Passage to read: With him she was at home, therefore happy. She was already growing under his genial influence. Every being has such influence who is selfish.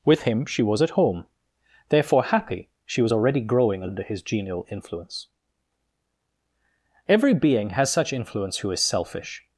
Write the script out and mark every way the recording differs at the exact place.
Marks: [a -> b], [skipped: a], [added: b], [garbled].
With him she was at home, therefore happy. She was already growing under his genial influence. Every being has such influence who is selfish.